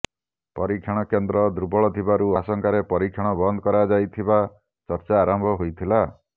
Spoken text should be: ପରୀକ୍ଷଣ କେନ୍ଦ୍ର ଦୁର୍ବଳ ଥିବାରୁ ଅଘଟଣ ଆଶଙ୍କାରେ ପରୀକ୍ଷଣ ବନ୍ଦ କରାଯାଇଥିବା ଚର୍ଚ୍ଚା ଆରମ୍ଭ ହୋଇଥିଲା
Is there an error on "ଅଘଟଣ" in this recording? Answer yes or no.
yes